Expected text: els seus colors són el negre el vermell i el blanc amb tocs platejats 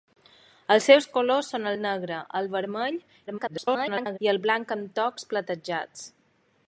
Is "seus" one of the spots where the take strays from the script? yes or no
no